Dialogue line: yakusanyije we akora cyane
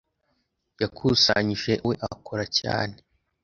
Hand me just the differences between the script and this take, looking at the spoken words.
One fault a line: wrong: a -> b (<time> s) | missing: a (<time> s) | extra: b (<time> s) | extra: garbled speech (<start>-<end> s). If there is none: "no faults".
no faults